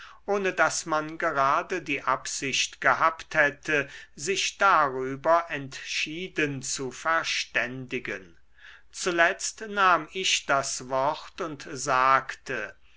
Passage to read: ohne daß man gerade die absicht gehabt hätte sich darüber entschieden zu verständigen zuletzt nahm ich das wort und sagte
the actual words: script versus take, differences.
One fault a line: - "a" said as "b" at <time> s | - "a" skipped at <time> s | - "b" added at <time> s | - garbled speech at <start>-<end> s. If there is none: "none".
none